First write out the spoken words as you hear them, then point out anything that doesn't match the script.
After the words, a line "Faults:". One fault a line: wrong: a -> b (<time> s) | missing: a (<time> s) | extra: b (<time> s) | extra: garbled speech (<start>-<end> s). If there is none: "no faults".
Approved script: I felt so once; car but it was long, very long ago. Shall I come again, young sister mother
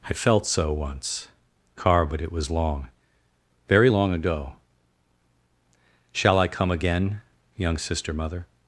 I felt so once; car but it was long, very long ago. Shall I come again, young sister mother
Faults:
no faults